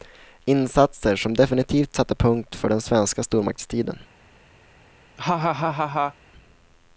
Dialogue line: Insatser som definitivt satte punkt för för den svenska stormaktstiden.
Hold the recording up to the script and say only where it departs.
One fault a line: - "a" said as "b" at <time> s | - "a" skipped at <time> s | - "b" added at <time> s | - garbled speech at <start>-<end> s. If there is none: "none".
- "för" skipped at 2.7 s